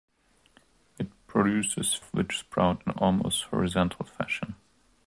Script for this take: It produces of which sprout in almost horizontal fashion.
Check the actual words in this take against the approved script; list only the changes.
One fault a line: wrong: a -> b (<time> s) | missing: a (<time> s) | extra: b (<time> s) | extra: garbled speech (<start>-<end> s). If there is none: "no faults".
no faults